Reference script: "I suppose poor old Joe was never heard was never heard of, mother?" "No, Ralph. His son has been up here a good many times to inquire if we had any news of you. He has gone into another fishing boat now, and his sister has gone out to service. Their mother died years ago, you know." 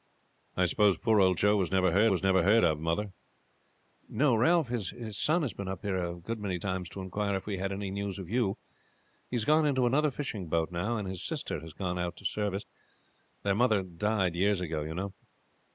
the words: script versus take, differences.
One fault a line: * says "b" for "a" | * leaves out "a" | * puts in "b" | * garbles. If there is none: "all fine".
all fine